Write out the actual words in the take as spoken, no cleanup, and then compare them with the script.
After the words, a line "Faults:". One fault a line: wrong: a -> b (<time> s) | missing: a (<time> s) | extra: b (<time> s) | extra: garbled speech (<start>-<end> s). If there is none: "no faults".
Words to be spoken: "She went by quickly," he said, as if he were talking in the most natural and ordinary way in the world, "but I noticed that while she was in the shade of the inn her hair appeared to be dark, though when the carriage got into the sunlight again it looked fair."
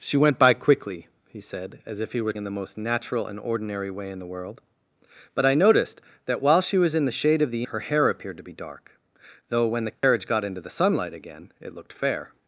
"She went by quickly," he said, as if he were in the most natural and ordinary way in the world, "but I noticed that while she was in the shade of the her hair appeared to be dark, though when the carriage got into the sunlight again it looked fair."
Faults:
missing: talking (2.3 s)
missing: inn (7.7 s)